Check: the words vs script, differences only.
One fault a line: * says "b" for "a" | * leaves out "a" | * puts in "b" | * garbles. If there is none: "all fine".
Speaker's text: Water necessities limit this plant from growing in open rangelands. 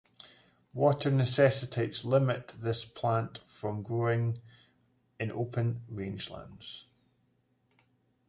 all fine